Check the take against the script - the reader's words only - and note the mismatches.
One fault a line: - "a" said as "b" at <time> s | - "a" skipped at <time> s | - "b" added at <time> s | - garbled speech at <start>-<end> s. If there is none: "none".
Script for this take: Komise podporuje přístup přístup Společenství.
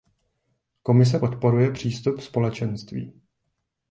- "přístup" skipped at 2.2 s